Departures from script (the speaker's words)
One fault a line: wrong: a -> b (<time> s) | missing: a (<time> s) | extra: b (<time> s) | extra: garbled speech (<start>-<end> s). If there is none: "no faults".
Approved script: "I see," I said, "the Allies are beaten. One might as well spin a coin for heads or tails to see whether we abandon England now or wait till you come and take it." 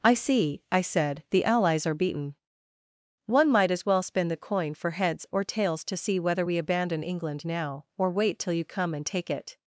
wrong: a -> the (4.3 s)